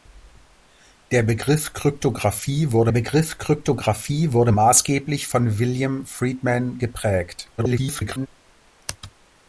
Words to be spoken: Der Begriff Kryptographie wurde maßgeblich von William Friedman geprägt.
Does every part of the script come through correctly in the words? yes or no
no